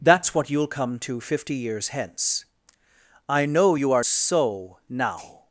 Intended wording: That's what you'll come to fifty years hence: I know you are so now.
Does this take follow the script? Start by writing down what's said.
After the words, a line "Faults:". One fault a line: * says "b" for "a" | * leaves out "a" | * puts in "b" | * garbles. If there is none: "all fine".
That's what you'll come to fifty years hence: I know you are so now.
Faults:
all fine